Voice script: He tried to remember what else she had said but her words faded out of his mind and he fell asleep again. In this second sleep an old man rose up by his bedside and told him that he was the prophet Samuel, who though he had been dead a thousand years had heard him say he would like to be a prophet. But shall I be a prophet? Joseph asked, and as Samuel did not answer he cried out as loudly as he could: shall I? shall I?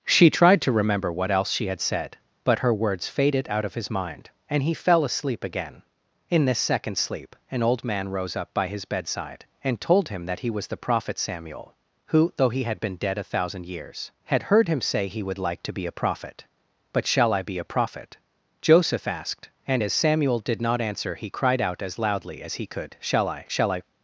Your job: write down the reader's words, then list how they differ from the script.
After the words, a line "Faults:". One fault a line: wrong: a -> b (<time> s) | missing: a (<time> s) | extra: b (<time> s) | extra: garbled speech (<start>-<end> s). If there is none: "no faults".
She tried to remember what else she had said but her words faded out of his mind and he fell asleep again. In this second sleep an old man rose up by his bedside and told him that he was the prophet Samuel, who though he had been dead a thousand years had heard him say he would like to be a prophet. But shall I be a prophet? Joseph asked, and as Samuel did not answer he cried out as loudly as he could: shall I? shall I?
Faults:
wrong: He -> She (0.1 s)